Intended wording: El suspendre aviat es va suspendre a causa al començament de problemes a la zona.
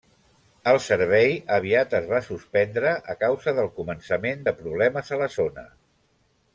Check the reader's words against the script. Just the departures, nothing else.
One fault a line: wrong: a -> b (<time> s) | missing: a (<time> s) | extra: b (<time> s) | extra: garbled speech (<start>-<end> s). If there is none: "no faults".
wrong: suspendre -> servei (0.8 s)
wrong: al -> del (3.6 s)